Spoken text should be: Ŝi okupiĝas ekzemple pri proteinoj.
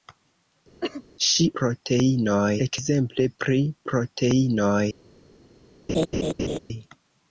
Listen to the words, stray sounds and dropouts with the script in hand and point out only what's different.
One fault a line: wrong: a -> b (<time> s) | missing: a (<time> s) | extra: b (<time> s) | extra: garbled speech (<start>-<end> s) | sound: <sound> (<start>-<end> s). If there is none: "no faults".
sound: cough (0.8-1.0 s)
wrong: okupiĝas -> proteinoj (1.6 s)
sound: laugh (5.9-6.6 s)